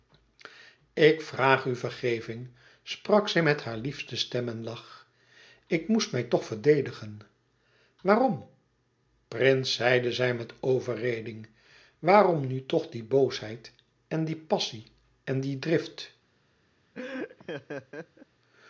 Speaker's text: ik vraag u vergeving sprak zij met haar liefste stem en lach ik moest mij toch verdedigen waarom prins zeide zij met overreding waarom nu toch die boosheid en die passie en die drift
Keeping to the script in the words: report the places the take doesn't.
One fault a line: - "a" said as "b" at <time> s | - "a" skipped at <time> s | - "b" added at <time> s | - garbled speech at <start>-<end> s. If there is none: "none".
none